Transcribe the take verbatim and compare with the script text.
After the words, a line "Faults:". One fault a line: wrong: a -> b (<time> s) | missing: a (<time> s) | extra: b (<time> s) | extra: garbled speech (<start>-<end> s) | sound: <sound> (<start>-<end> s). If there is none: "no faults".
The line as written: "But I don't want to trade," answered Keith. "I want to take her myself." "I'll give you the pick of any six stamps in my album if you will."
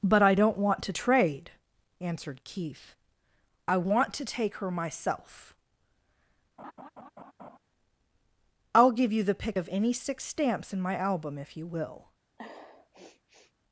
"But I don't want to trade," answered Keith. "I want to take her myself." "I'll give you the pick of any six stamps in my album if you will."
Faults:
sound: laugh (6.6-7.6 s)
sound: sniff (12.4-13.5 s)